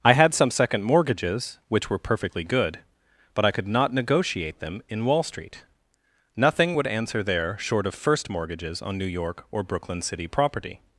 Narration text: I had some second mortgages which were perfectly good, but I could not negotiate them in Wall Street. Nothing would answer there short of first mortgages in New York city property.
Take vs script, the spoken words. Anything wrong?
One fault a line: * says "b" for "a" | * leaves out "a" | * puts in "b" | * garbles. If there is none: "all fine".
* says "on" for "in"
* puts in "or Brooklyn"